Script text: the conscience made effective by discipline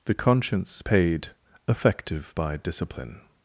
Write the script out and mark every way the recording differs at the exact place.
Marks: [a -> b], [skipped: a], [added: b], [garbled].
the conscience [made -> paid] effective by discipline